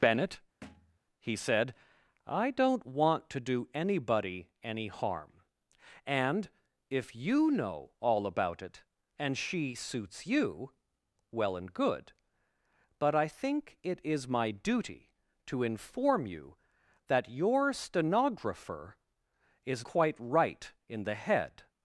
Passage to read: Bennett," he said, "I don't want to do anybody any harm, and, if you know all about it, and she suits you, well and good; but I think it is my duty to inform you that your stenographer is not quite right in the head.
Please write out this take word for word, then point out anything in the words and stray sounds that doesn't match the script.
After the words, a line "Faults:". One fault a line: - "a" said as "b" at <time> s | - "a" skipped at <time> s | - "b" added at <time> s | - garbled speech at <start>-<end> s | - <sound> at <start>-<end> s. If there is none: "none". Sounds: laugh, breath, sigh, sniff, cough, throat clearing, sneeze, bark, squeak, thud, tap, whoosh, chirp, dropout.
Bennett," he said, "I don't want to do anybody any harm, and, if you know all about it, and she suits you, well and good; but I think it is my duty to inform you that your stenographer is quite right in the head.
Faults:
- thud at 0.6-1.0 s
- "not" skipped at 19.9 s